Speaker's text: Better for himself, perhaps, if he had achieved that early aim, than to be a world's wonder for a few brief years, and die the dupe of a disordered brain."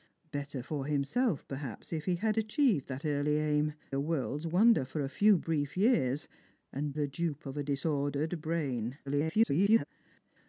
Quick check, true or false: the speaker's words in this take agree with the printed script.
false